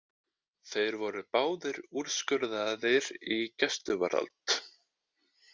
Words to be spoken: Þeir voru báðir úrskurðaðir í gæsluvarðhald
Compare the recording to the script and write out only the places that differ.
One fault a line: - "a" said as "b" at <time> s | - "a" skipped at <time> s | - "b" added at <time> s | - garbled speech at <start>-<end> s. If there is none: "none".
none